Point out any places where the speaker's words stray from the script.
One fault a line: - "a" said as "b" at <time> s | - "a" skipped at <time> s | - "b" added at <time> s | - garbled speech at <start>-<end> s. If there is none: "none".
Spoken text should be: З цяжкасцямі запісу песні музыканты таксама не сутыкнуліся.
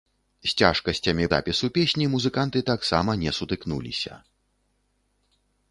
none